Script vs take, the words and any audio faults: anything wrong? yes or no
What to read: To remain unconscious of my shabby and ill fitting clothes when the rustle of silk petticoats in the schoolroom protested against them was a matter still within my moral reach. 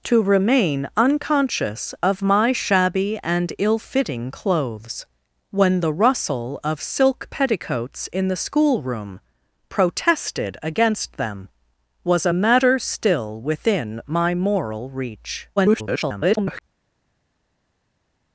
yes